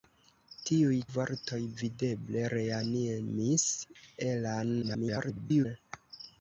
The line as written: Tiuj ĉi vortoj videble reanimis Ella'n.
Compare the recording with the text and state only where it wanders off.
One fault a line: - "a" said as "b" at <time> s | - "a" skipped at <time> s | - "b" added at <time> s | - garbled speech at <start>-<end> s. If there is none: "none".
- "ĉi" skipped at 0.9 s
- garbled speech at 4.8-5.7 s